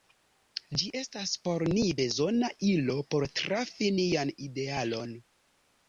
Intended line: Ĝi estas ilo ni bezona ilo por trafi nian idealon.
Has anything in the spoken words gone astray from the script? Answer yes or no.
yes